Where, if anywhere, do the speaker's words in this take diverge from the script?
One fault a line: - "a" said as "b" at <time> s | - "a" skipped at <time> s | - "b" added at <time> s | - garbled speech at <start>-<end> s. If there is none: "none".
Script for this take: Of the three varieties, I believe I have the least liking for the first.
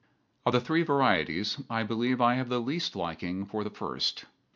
none